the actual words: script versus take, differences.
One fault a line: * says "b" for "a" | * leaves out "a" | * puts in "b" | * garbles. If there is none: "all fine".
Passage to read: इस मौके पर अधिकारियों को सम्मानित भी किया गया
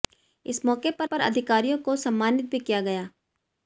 * puts in "पर"